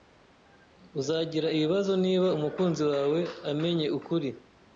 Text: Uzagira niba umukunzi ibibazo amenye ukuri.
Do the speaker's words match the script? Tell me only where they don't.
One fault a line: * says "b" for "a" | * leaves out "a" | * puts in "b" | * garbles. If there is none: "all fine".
* puts in "ibibazo"
* says "wawe" for "ibibazo"